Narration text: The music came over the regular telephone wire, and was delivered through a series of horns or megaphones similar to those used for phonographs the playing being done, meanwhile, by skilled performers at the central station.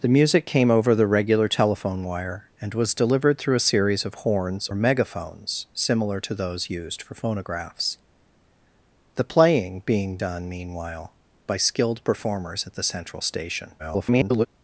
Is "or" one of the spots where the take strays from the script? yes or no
yes